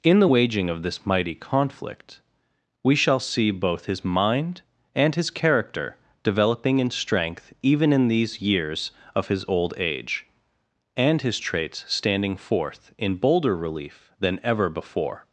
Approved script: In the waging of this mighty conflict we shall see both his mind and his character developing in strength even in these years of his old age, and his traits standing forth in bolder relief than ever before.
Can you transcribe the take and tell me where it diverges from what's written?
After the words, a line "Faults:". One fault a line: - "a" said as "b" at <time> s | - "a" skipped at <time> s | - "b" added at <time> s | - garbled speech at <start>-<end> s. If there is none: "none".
In the waging of this mighty conflict we shall see both his mind and his character developing in strength even in these years of his old age, and his traits standing forth in bolder relief than ever before.
Faults:
none